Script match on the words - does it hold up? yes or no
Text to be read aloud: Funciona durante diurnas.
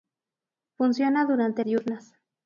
yes